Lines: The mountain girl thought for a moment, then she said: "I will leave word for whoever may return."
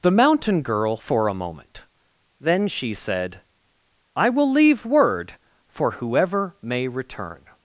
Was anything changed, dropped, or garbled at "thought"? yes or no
yes